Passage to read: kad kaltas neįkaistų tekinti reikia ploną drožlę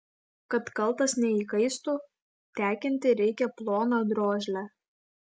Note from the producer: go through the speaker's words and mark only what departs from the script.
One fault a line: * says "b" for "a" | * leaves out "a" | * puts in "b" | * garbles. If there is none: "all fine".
all fine